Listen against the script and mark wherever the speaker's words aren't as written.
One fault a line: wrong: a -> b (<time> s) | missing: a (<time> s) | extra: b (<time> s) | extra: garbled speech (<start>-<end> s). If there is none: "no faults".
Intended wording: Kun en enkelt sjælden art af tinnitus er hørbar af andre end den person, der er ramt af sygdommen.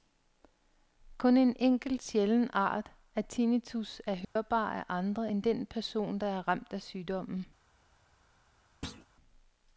no faults